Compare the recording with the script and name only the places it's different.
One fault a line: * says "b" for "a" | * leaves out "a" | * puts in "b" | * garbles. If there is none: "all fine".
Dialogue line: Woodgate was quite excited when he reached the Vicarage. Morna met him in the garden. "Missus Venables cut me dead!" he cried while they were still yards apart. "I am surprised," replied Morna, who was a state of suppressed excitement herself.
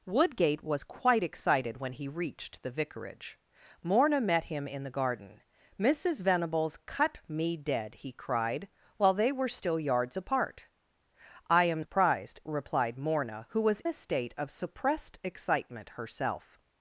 all fine